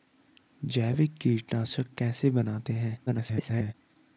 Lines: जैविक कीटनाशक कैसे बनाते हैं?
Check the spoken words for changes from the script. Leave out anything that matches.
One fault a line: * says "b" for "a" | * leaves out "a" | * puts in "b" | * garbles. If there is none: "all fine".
* garbles